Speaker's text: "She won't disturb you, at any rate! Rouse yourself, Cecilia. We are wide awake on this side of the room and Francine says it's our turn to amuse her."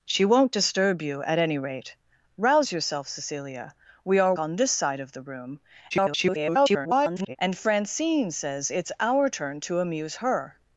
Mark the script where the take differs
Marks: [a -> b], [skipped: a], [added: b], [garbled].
"She won't disturb you, at any rate! Rouse yourself, Cecilia. We are [skipped: wide awake] on this side of the room [garbled] and Francine says it's our turn to amuse her."